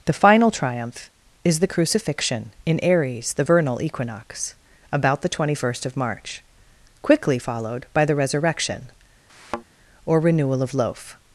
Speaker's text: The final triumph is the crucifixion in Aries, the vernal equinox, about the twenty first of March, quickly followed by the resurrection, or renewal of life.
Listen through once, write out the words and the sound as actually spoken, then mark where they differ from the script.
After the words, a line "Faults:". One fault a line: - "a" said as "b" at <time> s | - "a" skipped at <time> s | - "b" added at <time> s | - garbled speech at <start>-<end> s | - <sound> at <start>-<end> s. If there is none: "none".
The final triumph is the crucifixion in Aries, the vernal equinox, about the twenty first of March, quickly followed by the resurrection, or renewal of loaf.
Faults:
- thud at 9.3-9.6 s
- "life" said as "loaf" at 10.7 s